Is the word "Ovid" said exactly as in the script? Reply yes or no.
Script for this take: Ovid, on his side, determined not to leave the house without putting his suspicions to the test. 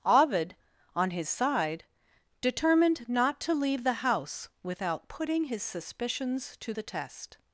yes